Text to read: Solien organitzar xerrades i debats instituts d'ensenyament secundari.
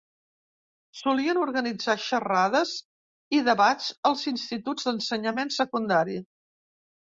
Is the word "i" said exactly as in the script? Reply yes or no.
yes